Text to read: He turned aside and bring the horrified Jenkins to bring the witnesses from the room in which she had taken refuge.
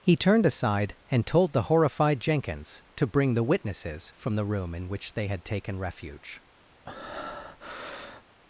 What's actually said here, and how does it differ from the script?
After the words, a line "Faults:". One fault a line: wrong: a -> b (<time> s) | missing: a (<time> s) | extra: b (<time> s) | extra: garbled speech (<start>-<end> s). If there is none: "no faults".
He turned aside and told the horrified Jenkins to bring the witnesses from the room in which they had taken refuge.
Faults:
wrong: bring -> told (1.3 s)
wrong: she -> they (5.1 s)